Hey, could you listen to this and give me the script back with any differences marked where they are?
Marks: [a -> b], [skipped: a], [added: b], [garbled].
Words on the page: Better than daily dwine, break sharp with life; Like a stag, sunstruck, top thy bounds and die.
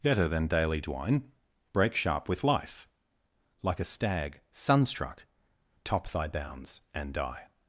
Better than daily dwine, break sharp with life; Like a stag, sunstruck, top thy bounds and die.